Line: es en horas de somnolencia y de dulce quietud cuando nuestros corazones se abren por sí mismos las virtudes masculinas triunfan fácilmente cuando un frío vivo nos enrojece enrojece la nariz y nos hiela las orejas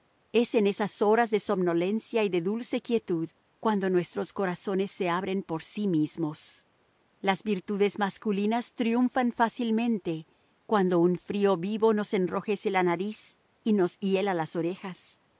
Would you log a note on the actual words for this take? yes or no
yes